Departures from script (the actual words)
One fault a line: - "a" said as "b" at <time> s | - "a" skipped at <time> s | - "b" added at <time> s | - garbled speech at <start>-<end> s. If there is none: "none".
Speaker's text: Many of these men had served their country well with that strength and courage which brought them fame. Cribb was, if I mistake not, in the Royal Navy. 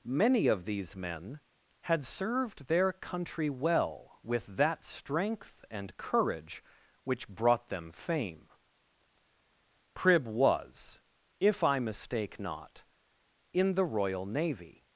none